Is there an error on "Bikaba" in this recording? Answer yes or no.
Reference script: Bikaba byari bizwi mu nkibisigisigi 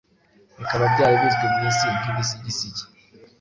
no